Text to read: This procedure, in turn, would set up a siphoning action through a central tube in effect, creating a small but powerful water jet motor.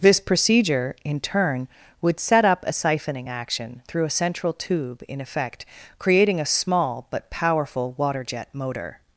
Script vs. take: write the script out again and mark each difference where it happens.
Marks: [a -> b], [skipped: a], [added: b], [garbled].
This procedure, in turn, would set up a siphoning action through a central tube in effect, creating a small but powerful water jet motor.